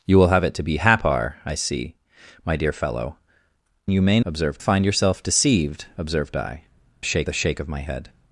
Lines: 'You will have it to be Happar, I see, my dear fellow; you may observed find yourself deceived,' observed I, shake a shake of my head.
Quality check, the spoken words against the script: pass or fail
pass